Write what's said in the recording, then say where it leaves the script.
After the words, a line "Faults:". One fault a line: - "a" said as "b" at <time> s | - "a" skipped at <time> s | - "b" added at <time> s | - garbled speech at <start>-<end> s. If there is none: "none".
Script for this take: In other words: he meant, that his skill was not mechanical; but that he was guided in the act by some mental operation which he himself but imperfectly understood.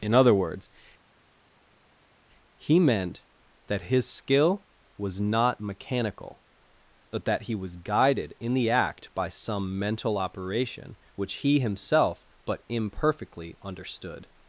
In other words: he meant, that his skill was not mechanical; but that he was guided in the act by some mental operation which he himself but imperfectly understood.
Faults:
none